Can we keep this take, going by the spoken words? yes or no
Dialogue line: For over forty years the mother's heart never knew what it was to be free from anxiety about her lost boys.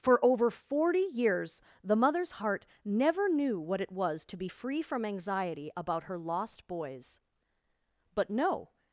no